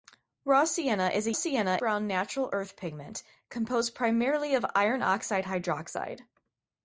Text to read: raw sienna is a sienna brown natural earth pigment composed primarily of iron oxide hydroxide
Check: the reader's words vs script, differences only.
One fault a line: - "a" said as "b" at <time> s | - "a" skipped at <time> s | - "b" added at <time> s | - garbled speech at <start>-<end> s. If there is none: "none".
none